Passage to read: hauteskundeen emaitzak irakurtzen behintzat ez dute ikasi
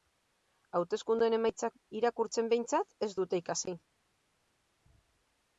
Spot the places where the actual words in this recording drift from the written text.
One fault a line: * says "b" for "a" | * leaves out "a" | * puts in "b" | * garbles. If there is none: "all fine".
all fine